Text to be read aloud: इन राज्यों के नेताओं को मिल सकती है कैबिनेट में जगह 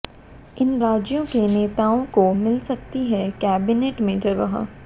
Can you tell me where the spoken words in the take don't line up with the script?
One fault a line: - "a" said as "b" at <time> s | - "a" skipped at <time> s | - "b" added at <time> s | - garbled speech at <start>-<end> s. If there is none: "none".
none